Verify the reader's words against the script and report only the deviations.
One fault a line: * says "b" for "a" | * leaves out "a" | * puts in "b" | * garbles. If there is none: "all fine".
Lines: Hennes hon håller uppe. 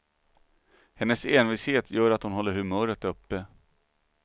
* puts in "envishet gör att"
* puts in "humöret"